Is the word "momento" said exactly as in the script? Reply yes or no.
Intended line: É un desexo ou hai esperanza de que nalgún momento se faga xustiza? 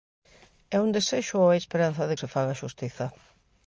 no